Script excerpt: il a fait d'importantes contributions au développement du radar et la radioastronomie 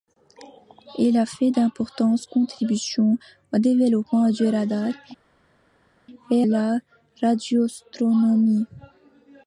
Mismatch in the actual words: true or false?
false